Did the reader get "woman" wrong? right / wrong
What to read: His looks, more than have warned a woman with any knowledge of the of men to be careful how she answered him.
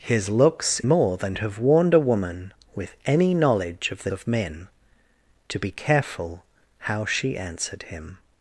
right